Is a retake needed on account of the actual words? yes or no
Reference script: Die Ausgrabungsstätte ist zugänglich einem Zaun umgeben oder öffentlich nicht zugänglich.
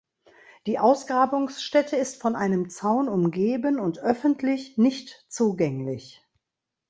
yes